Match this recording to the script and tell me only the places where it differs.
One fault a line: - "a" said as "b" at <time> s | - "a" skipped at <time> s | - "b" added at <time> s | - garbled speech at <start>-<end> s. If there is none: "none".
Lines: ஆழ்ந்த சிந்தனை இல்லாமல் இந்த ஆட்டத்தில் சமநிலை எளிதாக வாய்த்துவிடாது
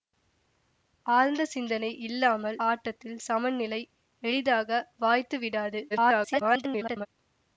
- "இந்த" skipped at 2.6 s
- garbled speech at 5.9-7.1 s